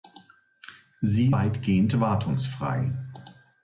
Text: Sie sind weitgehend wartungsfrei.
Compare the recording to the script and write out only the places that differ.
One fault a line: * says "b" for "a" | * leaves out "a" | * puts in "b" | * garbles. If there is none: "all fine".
* leaves out "sind"